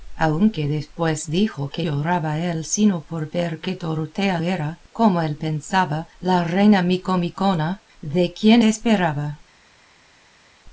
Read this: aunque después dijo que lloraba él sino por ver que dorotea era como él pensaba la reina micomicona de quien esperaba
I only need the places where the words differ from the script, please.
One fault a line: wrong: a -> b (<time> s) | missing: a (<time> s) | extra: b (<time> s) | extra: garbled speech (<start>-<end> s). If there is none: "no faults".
no faults